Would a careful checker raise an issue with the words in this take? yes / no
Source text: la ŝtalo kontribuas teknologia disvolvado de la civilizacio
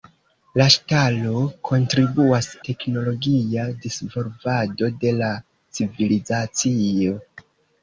no